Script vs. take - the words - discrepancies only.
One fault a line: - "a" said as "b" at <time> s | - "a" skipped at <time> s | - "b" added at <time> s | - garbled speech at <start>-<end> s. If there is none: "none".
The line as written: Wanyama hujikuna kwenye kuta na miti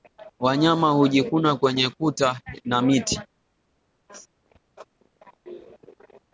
none